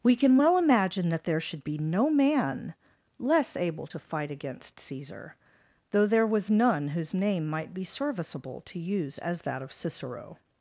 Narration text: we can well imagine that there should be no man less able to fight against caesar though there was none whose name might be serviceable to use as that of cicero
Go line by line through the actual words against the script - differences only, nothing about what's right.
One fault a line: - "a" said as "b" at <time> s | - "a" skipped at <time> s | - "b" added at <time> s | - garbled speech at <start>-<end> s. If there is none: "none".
none